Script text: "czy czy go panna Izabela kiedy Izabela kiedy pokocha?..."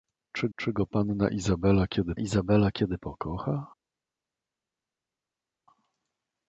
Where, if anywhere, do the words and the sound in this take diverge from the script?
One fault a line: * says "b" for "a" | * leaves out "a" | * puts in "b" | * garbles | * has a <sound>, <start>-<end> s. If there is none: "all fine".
all fine